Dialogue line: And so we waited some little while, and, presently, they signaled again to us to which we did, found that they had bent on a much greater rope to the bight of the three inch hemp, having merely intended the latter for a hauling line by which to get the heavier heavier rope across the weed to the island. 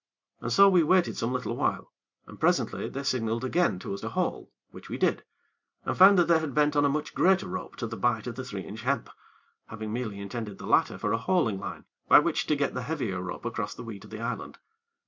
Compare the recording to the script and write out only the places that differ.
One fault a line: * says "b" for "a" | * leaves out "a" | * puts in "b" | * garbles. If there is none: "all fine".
* puts in "haul"
* puts in "and"
* leaves out "heavier"